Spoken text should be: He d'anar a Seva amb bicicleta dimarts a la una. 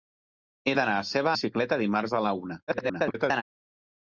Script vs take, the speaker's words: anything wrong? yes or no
yes